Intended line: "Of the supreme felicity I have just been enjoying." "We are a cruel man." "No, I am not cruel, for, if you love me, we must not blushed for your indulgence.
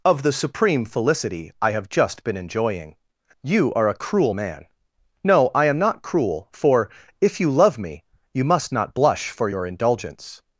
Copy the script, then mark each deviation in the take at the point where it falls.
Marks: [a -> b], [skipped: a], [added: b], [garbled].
"Of the supreme felicity I have just been enjoying." ["We -> You] are a cruel man." "No, I am not cruel, for, if you love me, [we -> you] must not [blushed -> blush] for your indulgence.